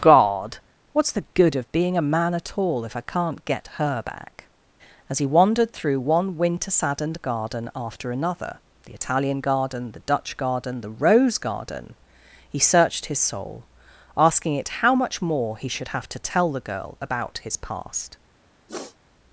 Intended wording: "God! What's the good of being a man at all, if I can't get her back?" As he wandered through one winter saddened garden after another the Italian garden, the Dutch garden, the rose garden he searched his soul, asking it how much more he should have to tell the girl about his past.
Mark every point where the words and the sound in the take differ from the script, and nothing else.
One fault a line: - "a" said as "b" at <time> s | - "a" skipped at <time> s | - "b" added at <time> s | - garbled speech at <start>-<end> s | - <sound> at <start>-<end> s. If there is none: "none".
- sniff at 18.7-19.0 s